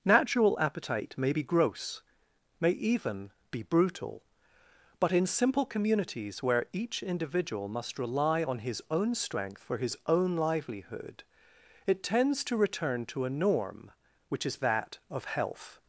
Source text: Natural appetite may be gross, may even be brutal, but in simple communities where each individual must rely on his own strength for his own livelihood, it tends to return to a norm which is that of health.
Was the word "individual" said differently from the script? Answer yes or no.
no